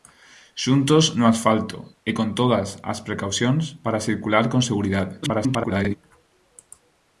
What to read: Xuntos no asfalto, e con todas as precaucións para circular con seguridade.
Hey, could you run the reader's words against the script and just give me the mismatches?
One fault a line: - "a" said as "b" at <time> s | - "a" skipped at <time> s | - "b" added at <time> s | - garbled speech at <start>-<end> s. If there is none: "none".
- garbled speech at 5.2-6.0 s